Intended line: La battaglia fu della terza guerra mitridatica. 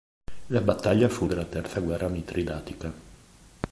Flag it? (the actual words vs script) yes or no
no